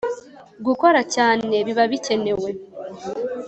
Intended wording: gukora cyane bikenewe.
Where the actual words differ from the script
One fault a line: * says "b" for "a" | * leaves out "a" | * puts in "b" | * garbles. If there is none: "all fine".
* puts in "biba"